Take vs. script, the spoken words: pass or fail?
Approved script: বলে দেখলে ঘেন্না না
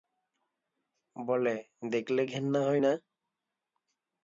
fail